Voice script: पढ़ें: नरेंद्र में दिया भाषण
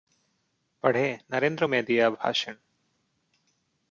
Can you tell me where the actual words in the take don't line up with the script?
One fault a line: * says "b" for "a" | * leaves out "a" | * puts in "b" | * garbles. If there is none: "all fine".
all fine